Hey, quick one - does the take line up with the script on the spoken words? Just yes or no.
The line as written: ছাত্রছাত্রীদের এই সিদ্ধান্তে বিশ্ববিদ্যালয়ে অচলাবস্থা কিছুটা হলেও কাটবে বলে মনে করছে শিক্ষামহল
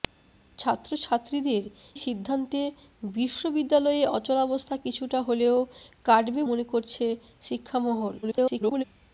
no